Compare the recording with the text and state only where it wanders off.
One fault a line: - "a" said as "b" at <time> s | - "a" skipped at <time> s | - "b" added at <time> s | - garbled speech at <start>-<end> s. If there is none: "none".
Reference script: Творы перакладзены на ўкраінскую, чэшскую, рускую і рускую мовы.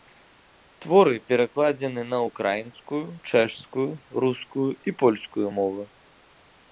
- "рускую" said as "польскую" at 5.0 s